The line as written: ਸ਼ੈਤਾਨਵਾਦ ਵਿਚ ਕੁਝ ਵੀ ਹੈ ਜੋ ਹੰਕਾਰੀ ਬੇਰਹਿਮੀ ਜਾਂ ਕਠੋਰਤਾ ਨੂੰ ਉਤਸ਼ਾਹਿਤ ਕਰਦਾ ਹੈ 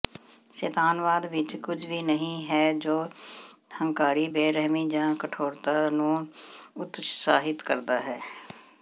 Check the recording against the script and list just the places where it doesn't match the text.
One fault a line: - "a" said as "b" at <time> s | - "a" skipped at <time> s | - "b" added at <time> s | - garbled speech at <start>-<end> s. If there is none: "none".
- "ਨਹੀਂ" added at 2.0 s